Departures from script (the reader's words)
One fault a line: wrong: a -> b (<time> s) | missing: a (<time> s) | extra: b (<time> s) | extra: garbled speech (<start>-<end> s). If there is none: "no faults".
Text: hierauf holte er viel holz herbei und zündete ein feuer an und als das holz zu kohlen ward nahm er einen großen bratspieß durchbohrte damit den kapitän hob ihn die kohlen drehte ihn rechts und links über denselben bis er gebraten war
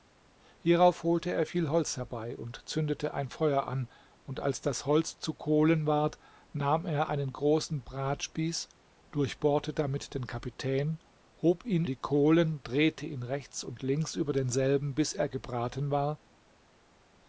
no faults